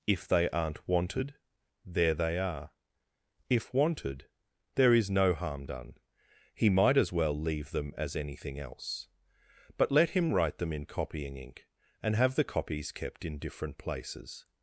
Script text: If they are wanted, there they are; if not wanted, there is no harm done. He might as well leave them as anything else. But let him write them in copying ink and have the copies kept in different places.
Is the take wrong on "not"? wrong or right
wrong